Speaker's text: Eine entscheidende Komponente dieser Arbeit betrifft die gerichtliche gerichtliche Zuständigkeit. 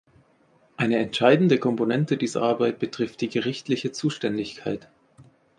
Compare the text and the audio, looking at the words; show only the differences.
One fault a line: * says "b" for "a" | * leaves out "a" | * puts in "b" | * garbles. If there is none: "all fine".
* leaves out "gerichtliche"